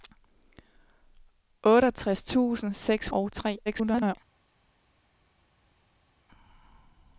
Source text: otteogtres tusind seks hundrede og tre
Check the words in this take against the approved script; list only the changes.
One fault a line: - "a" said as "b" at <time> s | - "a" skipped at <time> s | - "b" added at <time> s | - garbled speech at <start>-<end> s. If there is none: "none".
- "hundrede" skipped at 3.1 s
- garbled speech at 3.7-4.2 s